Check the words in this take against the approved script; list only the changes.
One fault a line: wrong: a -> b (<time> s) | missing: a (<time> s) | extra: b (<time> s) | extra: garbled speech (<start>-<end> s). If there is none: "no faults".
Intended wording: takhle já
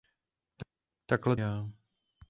no faults